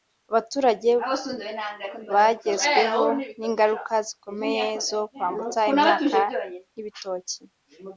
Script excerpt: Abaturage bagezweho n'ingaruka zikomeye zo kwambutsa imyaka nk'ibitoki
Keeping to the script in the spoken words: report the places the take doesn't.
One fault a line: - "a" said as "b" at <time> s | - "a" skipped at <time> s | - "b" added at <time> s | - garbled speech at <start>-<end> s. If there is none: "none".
none